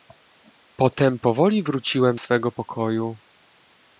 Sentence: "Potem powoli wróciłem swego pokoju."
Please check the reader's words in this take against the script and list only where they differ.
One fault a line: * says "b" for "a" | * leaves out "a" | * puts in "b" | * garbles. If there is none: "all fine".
all fine